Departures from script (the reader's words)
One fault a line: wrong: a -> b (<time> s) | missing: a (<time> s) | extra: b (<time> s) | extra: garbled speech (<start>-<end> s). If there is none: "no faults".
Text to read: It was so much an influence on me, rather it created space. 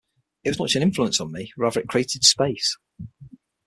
no faults